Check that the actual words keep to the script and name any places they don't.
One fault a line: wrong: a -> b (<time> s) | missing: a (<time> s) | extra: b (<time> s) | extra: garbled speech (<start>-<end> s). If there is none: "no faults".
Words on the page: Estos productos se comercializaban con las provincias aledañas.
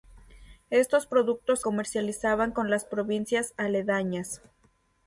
missing: se (1.6 s)